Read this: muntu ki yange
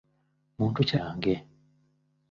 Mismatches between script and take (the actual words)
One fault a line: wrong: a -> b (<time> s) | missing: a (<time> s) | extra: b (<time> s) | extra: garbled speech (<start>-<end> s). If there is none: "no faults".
no faults